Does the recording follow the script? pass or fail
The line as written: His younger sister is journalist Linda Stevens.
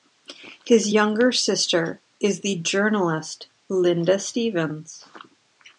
fail